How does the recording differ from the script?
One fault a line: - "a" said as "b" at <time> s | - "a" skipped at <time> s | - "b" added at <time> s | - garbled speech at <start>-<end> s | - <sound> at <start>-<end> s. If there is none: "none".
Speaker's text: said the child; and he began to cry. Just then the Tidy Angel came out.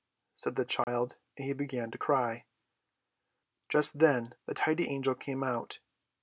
- dropout at 0.8-0.9 s